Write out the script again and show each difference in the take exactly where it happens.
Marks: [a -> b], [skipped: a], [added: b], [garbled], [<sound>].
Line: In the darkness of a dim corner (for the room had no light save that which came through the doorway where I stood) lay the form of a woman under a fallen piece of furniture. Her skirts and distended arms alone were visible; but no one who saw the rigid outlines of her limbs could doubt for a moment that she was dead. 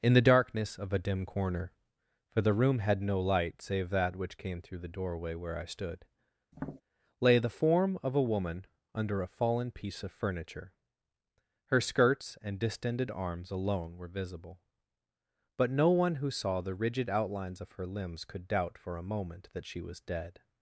In the darkness of a dim corner (for the room had no light save that which came through the doorway where I stood) [tap] lay the form of a woman under a fallen piece of furniture. Her skirts and distended arms alone were visible; but no one who saw the rigid outlines of her limbs could doubt for a moment that she was dead.